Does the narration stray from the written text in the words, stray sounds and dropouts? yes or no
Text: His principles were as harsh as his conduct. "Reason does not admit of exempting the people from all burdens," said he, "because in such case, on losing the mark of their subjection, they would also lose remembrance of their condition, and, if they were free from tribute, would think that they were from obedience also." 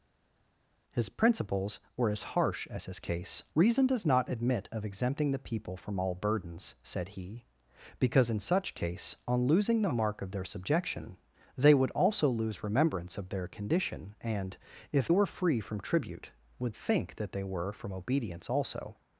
yes